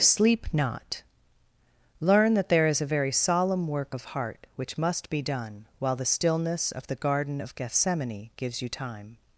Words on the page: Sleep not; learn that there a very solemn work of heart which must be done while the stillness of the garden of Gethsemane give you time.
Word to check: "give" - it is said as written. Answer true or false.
false